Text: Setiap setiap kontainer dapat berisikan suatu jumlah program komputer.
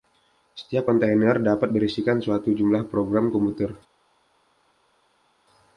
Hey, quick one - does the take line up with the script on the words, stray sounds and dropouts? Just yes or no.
no